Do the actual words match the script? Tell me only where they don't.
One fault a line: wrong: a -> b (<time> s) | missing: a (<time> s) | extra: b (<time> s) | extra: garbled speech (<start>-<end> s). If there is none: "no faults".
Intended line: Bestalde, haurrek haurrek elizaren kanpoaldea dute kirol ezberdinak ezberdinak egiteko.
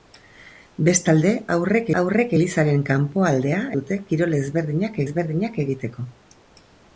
no faults